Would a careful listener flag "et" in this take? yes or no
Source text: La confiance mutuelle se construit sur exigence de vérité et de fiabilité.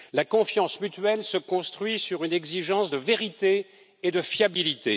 no